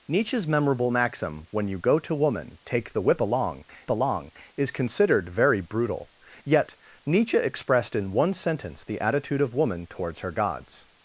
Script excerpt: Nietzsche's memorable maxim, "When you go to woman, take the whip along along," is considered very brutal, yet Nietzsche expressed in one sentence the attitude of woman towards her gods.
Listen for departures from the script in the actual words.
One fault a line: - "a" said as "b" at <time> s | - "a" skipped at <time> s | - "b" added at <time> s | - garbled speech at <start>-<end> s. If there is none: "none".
none